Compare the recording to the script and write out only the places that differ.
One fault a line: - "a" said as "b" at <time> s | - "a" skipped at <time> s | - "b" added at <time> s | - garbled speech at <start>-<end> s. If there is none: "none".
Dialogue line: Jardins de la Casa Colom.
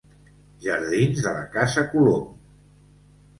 none